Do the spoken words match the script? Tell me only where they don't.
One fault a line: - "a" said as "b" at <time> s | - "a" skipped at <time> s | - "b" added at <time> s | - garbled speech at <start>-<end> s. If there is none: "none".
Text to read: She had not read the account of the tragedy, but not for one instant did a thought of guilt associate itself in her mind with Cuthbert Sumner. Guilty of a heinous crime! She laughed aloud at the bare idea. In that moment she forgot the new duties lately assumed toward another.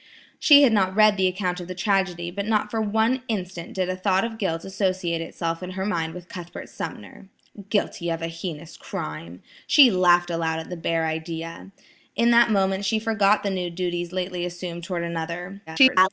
- garbled speech at 15.7-16.1 s